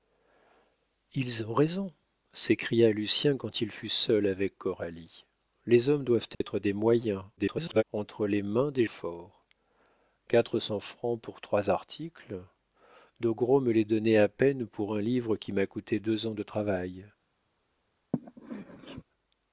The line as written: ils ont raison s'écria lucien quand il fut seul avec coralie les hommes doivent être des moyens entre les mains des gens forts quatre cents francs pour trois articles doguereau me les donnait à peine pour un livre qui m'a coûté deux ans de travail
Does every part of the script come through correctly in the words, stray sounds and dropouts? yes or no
no